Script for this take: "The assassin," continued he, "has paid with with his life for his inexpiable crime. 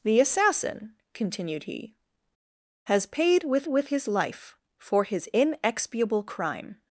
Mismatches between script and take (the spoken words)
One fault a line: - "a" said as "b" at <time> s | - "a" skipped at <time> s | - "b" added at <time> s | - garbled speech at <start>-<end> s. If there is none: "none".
none